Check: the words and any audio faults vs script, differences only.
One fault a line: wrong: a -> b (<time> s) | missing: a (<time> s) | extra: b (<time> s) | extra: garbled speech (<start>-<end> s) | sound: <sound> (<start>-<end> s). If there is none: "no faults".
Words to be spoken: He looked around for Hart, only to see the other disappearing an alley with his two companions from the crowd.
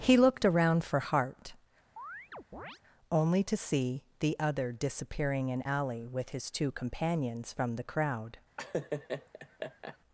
sound: chirp (2.0-2.8 s)
sound: laugh (8.6-10.0 s)